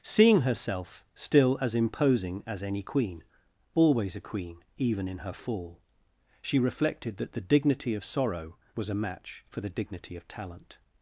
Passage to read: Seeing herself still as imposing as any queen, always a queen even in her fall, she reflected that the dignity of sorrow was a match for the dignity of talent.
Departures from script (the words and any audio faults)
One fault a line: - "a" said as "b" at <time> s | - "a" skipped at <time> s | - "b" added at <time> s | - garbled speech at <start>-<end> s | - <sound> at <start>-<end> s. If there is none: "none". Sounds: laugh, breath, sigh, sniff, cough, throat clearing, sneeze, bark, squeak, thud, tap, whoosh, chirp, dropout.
none